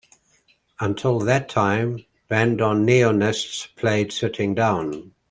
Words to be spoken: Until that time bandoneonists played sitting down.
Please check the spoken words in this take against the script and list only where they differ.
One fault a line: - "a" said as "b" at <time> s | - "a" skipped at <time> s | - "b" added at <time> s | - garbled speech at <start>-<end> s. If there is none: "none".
none